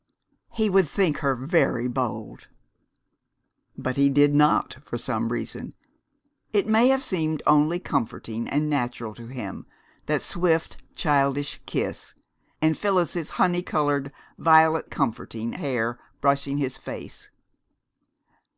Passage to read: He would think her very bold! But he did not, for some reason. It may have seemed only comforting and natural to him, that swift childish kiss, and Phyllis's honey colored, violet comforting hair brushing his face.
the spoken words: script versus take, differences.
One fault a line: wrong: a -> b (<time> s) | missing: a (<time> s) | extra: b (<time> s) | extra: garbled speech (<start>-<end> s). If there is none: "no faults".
no faults